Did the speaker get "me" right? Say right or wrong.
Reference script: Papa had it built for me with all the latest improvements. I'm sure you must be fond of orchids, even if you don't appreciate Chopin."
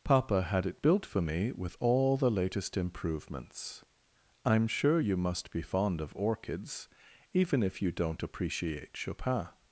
right